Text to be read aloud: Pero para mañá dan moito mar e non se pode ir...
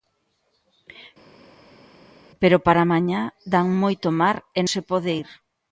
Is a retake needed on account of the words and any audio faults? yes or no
yes